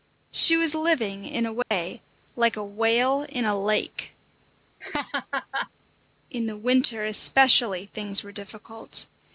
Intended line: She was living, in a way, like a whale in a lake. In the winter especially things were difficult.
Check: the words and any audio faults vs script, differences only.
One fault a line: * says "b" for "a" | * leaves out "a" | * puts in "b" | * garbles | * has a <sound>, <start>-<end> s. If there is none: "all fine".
* has a dropout, 1.6-1.7 s
* has a laugh, 4.8-5.7 s